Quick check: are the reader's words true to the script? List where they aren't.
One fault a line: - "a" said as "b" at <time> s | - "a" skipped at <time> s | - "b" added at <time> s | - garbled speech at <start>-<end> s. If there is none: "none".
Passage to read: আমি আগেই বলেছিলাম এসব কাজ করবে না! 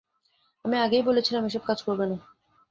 none